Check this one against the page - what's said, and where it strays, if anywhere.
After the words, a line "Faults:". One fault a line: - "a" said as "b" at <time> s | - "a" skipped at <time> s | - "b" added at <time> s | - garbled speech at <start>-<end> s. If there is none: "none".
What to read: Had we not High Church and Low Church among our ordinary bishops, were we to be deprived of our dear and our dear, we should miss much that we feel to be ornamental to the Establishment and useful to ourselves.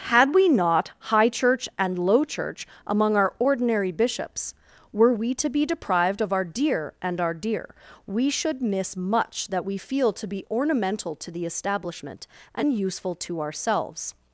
Had we not High Church and Low Church among our ordinary bishops, were we to be deprived of our dear and our dear, we should miss much that we feel to be ornamental to the Establishment and useful to ourselves.
Faults:
none